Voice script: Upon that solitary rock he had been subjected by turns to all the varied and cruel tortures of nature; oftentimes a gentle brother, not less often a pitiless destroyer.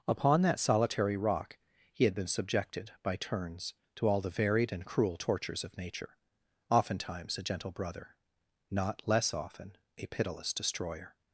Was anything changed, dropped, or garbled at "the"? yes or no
no